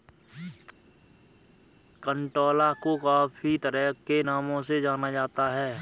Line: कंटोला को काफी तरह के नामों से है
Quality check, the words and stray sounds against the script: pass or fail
fail